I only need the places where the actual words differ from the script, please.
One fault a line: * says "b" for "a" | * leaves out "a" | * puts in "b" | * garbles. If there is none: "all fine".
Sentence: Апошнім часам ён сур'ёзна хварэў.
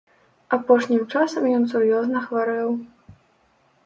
all fine